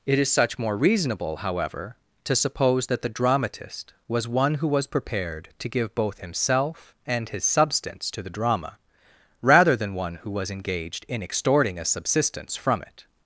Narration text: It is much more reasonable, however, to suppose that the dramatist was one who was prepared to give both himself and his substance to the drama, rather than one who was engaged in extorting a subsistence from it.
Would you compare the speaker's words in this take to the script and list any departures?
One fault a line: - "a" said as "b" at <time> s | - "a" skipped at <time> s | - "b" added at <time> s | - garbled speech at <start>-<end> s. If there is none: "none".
- "much" said as "such" at 0.3 s